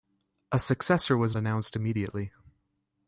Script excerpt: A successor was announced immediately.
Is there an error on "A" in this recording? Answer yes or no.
no